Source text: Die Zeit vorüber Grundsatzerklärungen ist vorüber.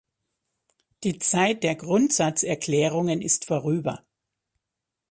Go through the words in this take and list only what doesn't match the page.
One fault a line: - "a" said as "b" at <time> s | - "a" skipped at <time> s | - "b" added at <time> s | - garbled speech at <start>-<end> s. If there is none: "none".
- "vorüber" said as "der" at 1.6 s